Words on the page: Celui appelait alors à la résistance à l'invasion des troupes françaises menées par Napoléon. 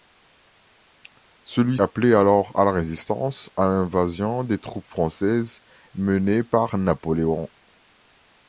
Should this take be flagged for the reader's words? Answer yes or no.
no